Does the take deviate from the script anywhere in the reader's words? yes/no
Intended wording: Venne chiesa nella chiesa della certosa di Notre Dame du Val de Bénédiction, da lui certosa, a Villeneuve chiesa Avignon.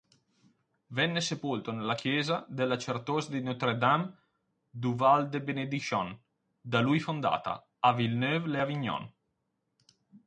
yes